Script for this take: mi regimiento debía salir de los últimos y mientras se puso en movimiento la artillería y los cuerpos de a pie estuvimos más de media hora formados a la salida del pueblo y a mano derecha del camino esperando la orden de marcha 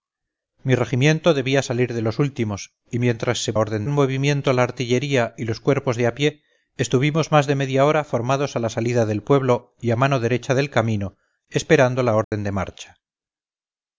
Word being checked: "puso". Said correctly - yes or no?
no